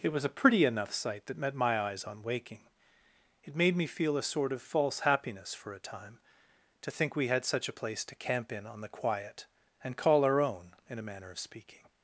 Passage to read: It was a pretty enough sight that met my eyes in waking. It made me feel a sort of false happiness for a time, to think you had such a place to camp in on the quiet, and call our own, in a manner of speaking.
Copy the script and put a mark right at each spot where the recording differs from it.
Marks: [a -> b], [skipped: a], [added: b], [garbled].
It was a pretty enough sight that met my eyes [in -> on] waking. It made me feel a sort of false happiness for a time, to think [you -> we] had such a place to camp in on the quiet, and call our own, in a manner of speaking.